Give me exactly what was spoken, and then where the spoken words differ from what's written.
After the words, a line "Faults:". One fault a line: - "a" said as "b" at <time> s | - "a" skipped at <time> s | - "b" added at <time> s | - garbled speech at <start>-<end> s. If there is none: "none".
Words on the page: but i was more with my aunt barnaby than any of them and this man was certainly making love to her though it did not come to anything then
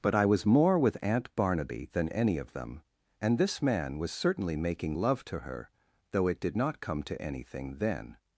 but i was more with aunt barnaby than any of them and this man was certainly making love to her though it did not come to anything then
Faults:
- "my" skipped at 1.0 s